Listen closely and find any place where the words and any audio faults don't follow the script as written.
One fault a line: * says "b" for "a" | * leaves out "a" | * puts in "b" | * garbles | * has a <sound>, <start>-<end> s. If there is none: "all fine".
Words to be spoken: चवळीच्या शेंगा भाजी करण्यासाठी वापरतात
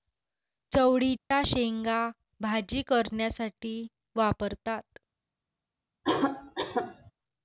* has a dropout, 1.2-1.3 s
* has a cough, 6.0-7.1 s